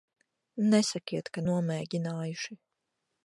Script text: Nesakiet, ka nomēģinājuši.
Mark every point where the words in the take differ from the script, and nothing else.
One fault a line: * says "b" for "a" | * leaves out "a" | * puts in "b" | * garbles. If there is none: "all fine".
all fine